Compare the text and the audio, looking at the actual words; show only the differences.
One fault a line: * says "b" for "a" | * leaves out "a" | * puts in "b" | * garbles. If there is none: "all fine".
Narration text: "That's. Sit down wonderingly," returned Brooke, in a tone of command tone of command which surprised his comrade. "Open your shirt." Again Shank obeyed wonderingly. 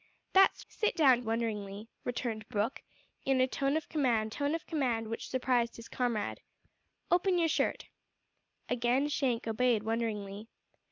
all fine